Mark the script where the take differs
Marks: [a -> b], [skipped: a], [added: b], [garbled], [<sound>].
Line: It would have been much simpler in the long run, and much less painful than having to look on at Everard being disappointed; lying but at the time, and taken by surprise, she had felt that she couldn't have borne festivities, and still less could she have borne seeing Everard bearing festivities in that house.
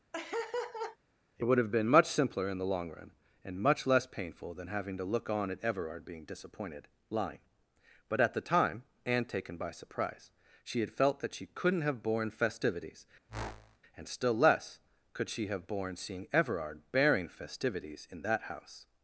[laugh] It would have been much simpler in the long run, and much less painful than having to look on at Everard being disappointed; lying but at the time, and taken by surprise, she had felt that she couldn't have borne festivities, [whoosh] and still less could she have borne seeing Everard bearing festivities in that house.